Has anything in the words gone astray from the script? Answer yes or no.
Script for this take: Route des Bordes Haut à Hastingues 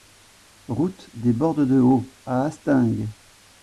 yes